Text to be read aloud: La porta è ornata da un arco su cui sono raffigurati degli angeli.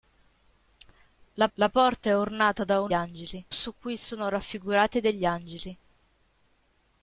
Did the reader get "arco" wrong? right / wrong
wrong